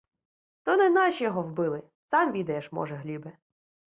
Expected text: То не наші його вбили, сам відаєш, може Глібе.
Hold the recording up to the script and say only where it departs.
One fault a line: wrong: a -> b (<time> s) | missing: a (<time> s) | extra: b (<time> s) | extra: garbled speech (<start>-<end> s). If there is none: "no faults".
no faults